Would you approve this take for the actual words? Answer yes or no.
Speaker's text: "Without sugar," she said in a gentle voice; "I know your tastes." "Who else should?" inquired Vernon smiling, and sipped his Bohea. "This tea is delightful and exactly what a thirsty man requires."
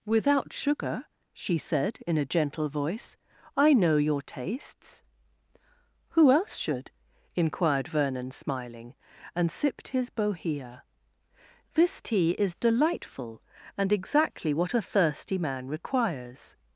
yes